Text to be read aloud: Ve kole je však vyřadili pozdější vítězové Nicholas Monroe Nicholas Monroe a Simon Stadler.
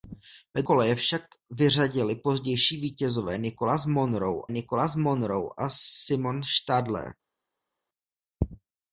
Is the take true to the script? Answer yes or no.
yes